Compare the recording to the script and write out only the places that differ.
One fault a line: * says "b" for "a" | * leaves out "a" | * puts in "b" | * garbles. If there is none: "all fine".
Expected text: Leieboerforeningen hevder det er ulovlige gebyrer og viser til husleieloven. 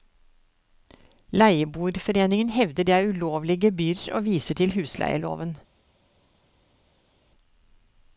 all fine